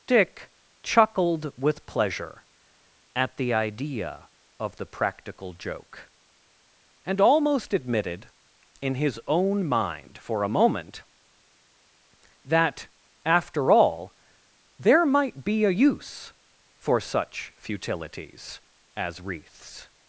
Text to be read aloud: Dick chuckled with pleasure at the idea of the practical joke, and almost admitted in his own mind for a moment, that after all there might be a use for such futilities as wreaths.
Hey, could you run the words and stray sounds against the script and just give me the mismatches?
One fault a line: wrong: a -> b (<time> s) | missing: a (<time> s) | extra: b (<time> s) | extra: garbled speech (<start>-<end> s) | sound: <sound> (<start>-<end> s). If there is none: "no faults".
no faults